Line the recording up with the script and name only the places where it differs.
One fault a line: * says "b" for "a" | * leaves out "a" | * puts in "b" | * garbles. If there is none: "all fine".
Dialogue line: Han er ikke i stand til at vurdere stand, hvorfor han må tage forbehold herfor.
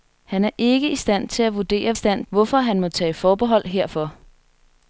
all fine